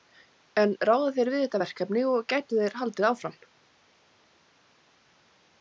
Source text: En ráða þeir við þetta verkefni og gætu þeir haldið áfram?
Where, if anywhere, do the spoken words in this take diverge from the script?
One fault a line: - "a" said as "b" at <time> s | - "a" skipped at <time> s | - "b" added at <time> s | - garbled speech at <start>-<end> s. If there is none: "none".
none